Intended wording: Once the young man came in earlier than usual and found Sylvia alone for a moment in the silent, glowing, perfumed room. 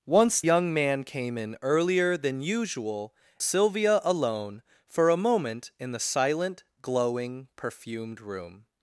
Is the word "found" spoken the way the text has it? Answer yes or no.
no